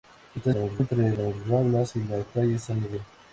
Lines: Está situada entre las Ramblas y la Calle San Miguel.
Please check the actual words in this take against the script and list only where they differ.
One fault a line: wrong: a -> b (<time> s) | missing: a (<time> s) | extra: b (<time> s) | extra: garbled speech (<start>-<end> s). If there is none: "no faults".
wrong: situada -> las (0.5 s)